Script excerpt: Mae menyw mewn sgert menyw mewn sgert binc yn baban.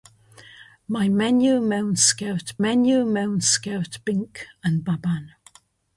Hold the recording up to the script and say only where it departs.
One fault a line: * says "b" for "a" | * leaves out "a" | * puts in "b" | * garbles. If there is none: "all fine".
all fine